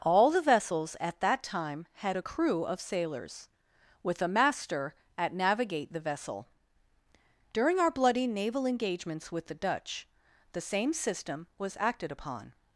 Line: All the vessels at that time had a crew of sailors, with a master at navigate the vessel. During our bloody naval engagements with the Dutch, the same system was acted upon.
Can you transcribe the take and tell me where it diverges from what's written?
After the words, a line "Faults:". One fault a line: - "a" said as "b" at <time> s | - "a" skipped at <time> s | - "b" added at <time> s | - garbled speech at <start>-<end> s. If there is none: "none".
All the vessels at that time had a crew of sailors, with a master at navigate the vessel. During our bloody naval engagements with the Dutch, the same system was acted upon.
Faults:
none